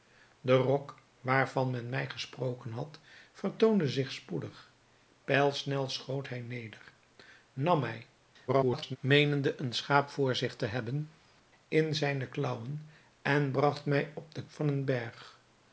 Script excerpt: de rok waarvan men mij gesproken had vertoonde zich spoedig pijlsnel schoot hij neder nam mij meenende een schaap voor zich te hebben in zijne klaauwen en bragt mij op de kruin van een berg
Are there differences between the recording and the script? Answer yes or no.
yes